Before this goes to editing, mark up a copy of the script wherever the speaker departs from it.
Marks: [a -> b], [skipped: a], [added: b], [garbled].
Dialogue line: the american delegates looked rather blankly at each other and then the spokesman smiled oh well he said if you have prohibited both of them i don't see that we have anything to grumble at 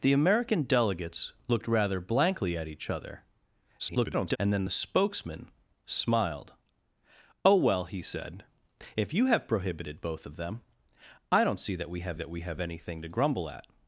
the american delegates looked rather blankly at each other [garbled] and then the spokesman smiled oh well he said if you have prohibited both of them i don't see that we have [added: that we have] anything to grumble at